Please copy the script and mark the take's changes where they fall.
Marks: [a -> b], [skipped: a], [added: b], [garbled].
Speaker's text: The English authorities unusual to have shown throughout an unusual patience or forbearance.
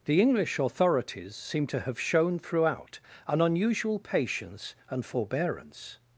The English authorities [unusual -> seem] to have shown throughout an unusual patience [or -> and] forbearance.